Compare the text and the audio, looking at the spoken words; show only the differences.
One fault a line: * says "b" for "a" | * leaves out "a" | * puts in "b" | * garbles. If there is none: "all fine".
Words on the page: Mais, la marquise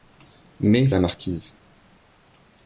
all fine